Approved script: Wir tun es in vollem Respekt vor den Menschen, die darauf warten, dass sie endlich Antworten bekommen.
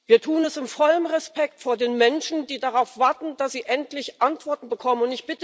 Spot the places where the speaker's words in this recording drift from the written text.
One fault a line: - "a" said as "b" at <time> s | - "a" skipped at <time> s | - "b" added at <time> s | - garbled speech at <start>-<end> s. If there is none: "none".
none